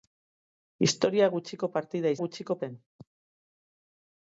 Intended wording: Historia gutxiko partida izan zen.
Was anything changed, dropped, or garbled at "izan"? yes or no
yes